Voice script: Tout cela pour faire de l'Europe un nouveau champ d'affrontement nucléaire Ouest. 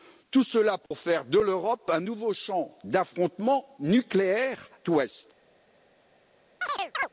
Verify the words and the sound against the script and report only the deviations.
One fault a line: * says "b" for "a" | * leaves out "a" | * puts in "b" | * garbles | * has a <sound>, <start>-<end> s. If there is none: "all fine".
* has a dropout, 0.9-0.9 s
* has a chirp, 6.6-7.1 s